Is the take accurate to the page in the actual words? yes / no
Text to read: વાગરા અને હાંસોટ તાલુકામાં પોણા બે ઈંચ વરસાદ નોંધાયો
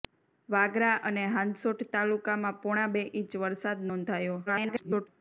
no